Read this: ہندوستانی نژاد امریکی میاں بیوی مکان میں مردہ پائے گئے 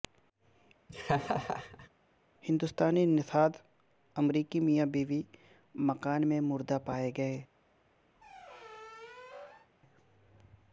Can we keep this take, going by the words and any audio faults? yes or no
no